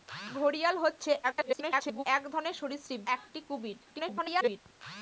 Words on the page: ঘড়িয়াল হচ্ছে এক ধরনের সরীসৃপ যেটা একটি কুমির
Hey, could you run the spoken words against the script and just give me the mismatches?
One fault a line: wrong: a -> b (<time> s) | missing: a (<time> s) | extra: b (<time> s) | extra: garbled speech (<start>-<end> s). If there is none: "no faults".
extra: garbled speech (1.2-2.0 s)
missing: যেটা (3.0 s)
extra: garbled speech (3.9-4.6 s)